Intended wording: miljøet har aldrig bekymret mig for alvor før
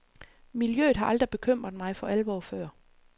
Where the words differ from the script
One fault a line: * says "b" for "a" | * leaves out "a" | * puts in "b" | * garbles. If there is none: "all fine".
all fine